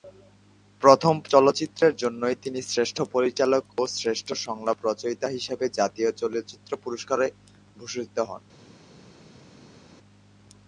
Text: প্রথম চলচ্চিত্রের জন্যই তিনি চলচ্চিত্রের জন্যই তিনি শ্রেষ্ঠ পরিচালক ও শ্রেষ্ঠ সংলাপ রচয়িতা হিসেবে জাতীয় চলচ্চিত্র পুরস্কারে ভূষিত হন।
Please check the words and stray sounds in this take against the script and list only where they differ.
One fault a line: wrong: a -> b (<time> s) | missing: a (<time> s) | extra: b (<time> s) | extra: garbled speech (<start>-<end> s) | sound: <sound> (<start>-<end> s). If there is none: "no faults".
missing: চলচ্চিত্রের জন্যই তিনি (2.6 s)